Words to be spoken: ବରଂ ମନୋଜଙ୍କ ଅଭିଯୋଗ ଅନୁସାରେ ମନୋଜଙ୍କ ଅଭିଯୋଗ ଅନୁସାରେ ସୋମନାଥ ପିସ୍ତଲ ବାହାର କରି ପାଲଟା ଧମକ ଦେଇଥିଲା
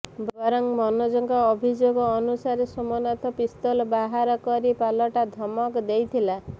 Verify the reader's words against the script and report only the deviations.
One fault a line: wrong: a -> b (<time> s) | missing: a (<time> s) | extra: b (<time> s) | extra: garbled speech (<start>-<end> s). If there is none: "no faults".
missing: ମନୋଜଙ୍କ ଅଭିଯୋଗ ଅନୁସାରେ (2.7 s)